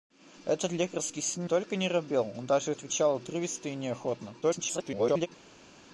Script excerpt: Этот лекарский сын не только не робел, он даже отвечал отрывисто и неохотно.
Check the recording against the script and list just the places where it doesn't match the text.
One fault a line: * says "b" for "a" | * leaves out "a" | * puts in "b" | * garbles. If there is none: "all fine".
* leaves out "не"
* garbles